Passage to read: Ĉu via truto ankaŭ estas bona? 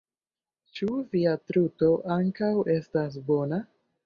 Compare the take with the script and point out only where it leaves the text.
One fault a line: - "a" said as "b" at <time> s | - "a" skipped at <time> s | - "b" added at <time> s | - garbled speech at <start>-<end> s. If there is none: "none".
none